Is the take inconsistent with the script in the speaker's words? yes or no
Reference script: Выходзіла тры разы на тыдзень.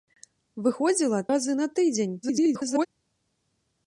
yes